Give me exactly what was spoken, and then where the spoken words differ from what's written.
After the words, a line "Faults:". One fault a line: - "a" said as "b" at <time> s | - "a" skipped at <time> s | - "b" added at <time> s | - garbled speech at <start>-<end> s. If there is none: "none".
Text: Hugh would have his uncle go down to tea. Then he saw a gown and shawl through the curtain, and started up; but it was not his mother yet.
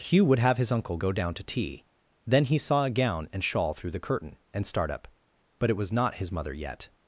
Hugh would have his uncle go down to tea. Then he saw a gown and shawl through the curtain, and start up; but it was not his mother yet.
Faults:
- "started" said as "start" at 4.6 s